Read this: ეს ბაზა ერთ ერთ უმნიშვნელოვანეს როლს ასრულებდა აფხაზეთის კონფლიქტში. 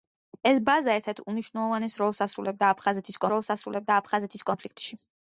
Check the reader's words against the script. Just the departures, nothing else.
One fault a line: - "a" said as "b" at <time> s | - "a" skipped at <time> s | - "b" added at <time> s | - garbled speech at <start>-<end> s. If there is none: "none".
- "როლს ასრულებდა აფხაზეთის" added at 3.3 s